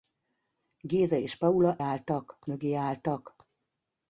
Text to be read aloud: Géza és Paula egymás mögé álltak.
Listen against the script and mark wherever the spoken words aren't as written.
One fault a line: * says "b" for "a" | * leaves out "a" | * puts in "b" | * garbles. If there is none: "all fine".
* says "álltak" for "egymás"